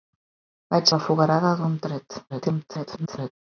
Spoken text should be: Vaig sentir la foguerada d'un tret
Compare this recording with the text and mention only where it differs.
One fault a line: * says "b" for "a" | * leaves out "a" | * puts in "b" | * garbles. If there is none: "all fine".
* leaves out "sentir"
* garbles